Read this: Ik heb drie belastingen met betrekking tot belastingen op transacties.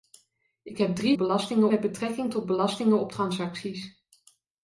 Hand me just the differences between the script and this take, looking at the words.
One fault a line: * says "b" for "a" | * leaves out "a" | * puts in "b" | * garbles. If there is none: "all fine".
all fine